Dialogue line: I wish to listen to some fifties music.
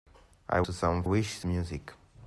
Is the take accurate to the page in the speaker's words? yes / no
no